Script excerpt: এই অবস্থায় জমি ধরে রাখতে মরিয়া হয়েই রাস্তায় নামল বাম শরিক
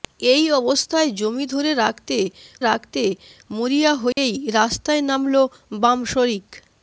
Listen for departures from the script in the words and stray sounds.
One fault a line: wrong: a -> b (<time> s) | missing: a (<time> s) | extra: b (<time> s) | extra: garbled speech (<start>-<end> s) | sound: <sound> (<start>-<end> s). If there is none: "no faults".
extra: রাখতে (2.6 s)
sound: dropout (4.1-4.2 s)